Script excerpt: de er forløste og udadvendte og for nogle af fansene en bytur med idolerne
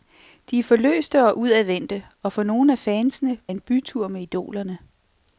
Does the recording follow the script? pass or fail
pass